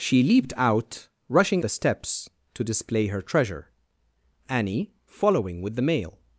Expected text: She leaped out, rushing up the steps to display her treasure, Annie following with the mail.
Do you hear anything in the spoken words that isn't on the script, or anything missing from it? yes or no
yes